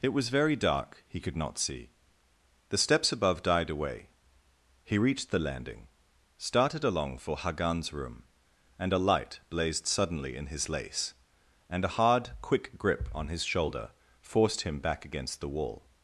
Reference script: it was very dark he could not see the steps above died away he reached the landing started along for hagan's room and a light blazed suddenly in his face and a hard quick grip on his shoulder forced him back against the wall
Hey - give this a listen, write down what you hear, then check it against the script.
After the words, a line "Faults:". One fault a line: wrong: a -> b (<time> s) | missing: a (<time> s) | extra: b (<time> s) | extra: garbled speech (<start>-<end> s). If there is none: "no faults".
it was very dark he could not see the steps above died away he reached the landing started along for hagan's room and a light blazed suddenly in his lace and a hard quick grip on his shoulder forced him back against the wall
Faults:
wrong: face -> lace (10.7 s)